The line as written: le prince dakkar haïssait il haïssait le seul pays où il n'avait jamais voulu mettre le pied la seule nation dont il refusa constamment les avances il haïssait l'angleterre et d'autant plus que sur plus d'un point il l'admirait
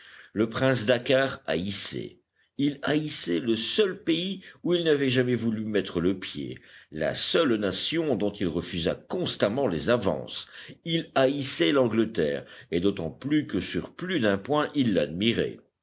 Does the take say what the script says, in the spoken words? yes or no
yes